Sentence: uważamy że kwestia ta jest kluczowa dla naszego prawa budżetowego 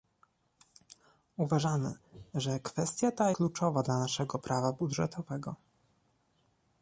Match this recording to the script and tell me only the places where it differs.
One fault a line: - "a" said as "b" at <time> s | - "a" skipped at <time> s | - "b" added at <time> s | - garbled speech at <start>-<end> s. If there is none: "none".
- "jest" skipped at 3.3 s